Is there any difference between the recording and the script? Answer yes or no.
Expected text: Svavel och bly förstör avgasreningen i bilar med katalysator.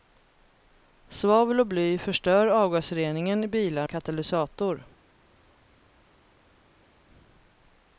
yes